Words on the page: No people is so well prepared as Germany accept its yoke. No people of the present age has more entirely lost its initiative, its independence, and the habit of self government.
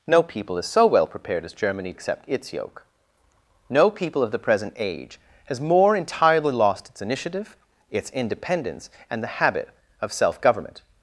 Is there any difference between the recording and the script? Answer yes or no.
no